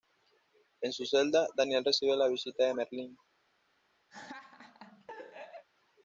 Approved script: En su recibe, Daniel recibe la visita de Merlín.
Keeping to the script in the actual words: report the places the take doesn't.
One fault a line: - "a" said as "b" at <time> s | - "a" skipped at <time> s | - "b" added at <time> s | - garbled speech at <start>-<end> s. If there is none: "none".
- "recibe" said as "celda" at 1.1 s